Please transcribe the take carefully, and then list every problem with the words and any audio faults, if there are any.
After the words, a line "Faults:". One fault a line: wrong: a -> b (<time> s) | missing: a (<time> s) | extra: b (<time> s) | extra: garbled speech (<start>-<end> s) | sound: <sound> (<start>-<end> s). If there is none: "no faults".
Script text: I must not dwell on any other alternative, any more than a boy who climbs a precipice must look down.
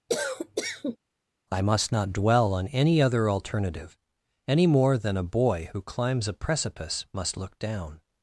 I must not dwell on any other alternative, any more than a boy who climbs a precipice must look down.
Faults:
sound: cough (0.1-1.0 s)